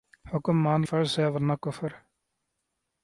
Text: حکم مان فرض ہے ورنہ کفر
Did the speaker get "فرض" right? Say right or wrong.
right